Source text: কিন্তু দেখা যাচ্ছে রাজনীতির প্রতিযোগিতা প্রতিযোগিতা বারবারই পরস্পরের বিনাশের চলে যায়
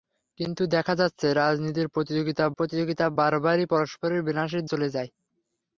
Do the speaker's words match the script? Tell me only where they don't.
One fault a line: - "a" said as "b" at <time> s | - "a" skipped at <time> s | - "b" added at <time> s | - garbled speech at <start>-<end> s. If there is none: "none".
none